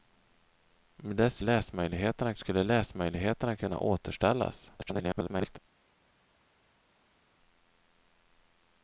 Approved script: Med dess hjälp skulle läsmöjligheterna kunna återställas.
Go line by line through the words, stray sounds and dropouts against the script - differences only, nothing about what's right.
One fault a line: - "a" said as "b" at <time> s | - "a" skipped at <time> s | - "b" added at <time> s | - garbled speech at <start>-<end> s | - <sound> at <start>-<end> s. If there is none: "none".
- "hjälp" said as "läsmöjligheterna" at 1.4 s
- garbled speech at 4.8-5.6 s